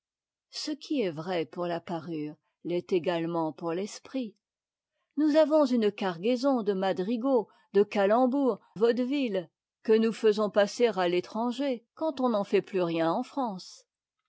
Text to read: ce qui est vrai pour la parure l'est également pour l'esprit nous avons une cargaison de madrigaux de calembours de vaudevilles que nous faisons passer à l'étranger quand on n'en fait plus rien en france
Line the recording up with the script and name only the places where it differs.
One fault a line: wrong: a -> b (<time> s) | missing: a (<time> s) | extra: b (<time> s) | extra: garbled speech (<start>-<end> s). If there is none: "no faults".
missing: de (8.6 s)